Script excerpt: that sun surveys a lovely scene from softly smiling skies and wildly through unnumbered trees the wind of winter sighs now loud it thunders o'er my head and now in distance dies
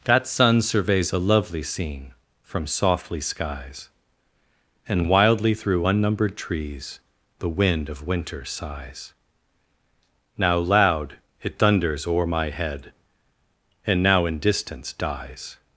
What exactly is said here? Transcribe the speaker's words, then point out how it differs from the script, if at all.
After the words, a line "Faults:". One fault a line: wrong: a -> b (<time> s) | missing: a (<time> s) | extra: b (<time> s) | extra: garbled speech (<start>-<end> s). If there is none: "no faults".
that sun surveys a lovely scene from softly skies and wildly through unnumbered trees the wind of winter sighs now loud it thunders o'er my head and now in distance dies
Faults:
missing: smiling (3.2 s)